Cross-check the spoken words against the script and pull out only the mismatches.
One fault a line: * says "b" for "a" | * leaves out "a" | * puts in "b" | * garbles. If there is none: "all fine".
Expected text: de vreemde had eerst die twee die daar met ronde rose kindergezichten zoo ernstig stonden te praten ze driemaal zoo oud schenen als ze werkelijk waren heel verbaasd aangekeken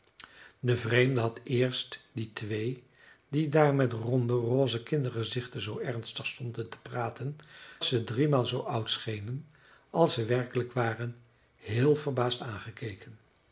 all fine